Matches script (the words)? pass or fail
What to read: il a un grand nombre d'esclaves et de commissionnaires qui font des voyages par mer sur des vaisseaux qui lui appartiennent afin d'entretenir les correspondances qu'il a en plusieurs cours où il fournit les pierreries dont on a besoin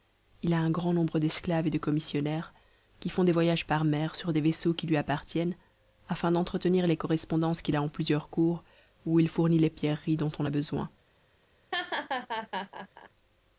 pass